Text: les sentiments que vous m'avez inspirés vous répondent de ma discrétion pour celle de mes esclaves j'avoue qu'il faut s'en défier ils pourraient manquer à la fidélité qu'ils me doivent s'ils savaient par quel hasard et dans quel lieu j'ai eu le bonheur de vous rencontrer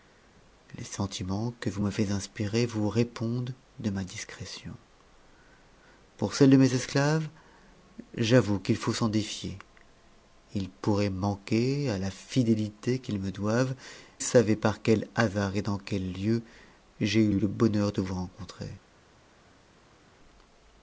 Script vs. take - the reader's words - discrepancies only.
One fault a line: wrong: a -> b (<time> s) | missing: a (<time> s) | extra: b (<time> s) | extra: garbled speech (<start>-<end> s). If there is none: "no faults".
missing: s'ils (13.8 s)
extra: eu (17.3 s)